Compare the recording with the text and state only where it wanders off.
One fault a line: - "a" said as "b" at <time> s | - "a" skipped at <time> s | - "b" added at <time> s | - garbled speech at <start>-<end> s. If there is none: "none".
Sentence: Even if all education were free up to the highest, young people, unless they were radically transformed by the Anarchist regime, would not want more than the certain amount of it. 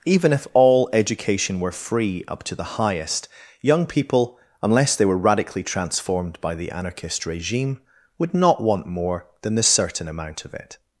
none